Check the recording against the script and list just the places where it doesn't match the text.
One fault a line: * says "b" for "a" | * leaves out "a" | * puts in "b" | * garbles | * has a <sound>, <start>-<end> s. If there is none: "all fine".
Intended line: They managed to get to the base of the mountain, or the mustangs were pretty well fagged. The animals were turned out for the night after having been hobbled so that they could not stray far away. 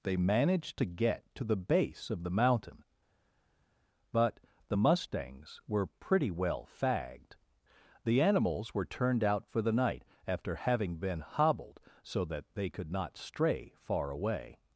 * says "but" for "or"